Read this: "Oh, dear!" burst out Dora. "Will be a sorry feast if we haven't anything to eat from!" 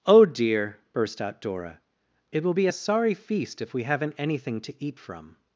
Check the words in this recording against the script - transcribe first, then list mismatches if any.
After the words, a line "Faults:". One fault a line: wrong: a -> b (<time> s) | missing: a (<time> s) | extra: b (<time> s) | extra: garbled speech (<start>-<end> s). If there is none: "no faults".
"Oh, dear!" burst out Dora. "It will be a sorry feast if we haven't anything to eat from!"
Faults:
extra: It (2.3 s)